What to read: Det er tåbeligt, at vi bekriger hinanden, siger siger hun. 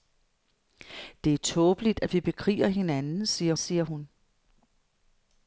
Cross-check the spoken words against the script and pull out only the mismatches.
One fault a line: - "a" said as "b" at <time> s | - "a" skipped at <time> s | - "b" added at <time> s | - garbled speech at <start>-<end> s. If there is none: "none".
none